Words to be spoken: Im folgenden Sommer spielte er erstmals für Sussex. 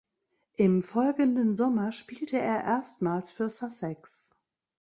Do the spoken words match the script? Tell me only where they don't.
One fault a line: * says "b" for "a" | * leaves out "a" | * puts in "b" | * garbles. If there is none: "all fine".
all fine